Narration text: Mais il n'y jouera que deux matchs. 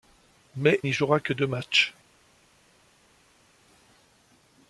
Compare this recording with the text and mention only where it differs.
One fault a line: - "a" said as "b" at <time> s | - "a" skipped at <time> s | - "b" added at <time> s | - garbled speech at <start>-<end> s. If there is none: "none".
- "il" skipped at 0.8 s